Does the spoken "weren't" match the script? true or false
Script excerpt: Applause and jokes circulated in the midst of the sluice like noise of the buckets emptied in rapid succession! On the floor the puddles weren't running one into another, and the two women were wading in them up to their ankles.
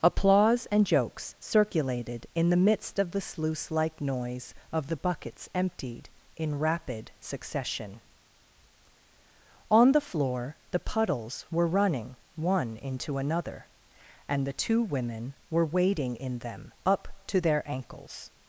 false